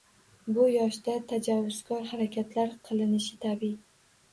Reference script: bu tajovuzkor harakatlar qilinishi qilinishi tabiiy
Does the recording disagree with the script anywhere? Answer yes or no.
yes